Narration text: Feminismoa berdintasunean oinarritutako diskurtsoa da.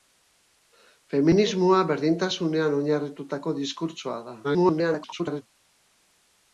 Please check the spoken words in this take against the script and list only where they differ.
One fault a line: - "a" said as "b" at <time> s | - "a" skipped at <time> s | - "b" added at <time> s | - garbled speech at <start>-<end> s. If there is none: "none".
- garbled speech at 4.4-5.4 s